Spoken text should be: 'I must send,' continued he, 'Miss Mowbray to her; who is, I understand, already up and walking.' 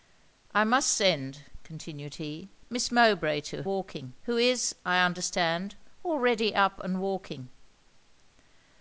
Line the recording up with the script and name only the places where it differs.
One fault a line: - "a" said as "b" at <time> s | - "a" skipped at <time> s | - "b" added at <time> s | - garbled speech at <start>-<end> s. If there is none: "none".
- "her" said as "walking" at 3.6 s